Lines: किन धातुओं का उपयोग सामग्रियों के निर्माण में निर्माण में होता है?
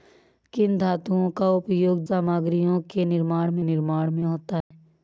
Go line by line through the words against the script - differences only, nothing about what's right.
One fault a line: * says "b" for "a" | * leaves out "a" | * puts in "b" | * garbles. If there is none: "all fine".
all fine